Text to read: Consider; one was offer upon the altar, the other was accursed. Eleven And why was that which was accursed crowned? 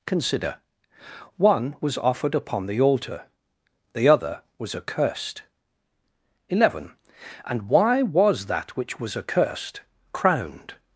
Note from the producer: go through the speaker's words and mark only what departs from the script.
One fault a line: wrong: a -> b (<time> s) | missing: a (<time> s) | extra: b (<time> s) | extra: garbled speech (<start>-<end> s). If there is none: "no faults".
wrong: offer -> offered (2.0 s)